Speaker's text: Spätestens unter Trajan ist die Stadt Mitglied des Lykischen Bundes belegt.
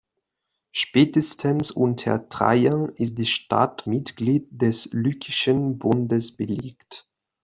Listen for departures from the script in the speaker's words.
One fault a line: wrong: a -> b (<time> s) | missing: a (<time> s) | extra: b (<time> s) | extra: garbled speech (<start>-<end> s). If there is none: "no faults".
no faults